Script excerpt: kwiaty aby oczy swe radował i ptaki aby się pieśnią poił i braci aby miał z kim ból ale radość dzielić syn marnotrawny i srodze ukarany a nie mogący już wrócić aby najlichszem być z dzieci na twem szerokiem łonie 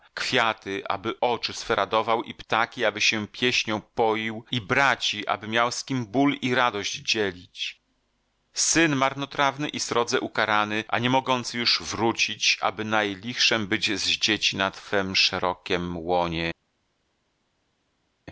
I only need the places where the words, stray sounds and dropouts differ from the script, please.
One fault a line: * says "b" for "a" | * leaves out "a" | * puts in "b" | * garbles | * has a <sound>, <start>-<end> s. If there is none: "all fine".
* says "i" for "ale"